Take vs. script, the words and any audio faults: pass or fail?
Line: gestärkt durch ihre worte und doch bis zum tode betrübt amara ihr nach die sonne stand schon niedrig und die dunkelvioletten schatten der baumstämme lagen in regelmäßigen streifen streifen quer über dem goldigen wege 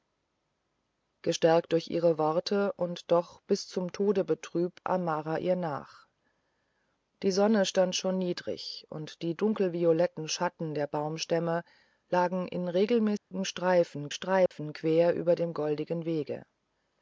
fail